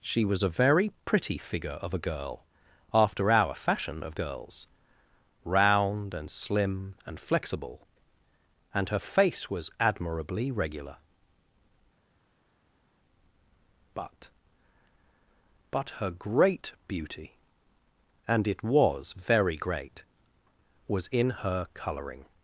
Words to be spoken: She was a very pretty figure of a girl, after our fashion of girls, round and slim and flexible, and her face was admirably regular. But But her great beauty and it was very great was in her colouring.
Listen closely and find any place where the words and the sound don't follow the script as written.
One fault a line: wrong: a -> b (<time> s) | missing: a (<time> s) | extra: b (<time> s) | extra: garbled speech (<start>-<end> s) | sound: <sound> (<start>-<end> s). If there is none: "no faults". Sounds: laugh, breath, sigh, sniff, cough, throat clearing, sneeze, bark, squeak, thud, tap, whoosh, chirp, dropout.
no faults